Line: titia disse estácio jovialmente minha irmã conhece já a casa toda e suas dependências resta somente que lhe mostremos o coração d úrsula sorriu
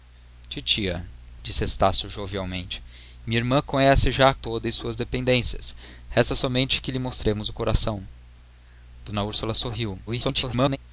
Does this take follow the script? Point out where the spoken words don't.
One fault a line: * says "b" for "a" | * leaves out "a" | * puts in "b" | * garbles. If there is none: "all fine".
* leaves out "casa"
* garbles